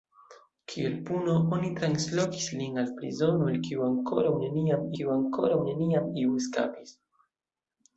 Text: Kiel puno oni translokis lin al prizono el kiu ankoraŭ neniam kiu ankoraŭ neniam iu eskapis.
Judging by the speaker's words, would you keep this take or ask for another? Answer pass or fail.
pass